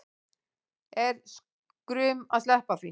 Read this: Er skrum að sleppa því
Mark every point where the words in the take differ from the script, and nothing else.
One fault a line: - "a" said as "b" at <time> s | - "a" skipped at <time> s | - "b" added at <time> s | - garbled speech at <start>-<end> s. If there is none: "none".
none